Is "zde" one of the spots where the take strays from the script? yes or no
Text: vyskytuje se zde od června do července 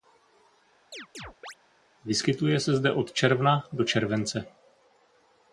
no